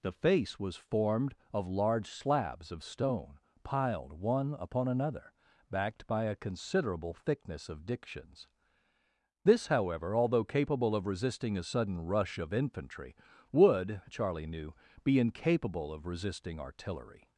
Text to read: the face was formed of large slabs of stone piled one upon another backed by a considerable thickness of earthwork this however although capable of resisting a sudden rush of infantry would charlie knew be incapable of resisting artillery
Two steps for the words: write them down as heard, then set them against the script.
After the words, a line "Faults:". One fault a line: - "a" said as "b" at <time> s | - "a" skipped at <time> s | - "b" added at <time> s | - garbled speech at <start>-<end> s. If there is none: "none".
the face was formed of large slabs of stone piled one upon another backed by a considerable thickness of dictions this however although capable of resisting a sudden rush of infantry would charlie knew be incapable of resisting artillery
Faults:
- "earthwork" said as "dictions" at 7.8 s